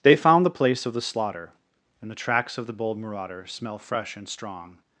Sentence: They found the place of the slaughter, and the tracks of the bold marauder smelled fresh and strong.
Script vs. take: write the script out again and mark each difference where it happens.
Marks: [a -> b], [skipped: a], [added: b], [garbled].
They found the place of the slaughter, and the tracks of the bold marauder [smelled -> smell] fresh and strong.